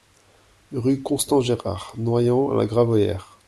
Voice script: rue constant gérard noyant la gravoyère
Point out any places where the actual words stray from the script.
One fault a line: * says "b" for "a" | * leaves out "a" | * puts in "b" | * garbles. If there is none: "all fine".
all fine